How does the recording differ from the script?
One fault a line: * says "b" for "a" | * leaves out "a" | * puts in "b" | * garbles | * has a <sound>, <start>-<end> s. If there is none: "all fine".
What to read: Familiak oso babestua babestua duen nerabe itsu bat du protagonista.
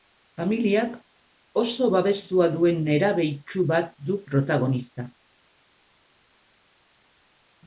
* leaves out "babestua"